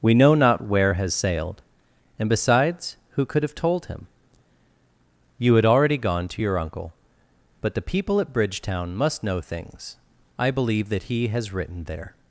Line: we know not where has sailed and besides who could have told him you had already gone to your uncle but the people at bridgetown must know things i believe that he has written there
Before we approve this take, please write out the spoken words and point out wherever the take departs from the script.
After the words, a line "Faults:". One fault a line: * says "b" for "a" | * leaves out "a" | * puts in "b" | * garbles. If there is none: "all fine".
we know not where has sailed and besides who could have told him you had already gone to your uncle but the people at bridgetown must know things i believe that he has written there
Faults:
all fine